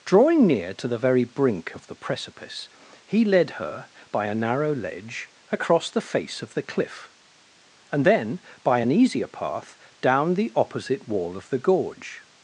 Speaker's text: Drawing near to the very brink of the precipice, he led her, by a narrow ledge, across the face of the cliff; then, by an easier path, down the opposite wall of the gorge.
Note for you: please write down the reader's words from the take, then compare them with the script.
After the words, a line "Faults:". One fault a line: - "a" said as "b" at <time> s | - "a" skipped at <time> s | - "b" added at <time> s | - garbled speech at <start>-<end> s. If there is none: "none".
Drawing near to the very brink of the precipice, he led her, by a narrow ledge, across the face of the cliff; and then, by an easier path, down the opposite wall of the gorge.
Faults:
- "and" added at 7.9 s